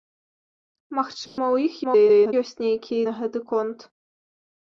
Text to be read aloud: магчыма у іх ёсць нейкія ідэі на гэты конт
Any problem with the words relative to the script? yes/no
yes